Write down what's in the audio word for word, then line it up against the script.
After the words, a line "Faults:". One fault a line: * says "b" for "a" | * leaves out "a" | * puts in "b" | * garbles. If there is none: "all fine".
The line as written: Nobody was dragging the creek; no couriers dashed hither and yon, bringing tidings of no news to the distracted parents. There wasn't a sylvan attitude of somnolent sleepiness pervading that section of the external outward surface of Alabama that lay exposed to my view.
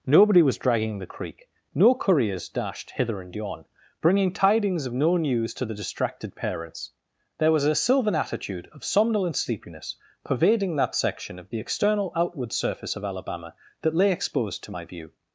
Nobody was dragging the creek; no couriers dashed hither and yon, bringing tidings of no news to the distracted parents. There was a sylvan attitude of somnolent sleepiness pervading that section of the external outward surface of Alabama that lay exposed to my view.
Faults:
* says "was" for "wasn't"